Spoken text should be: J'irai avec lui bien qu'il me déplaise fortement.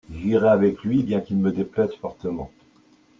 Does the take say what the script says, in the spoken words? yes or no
yes